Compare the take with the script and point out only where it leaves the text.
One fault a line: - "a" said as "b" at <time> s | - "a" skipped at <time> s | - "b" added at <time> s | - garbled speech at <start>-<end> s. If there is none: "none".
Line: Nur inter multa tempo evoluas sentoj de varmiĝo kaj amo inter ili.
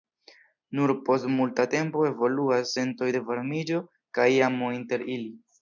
- "inter" said as "post" at 1.1 s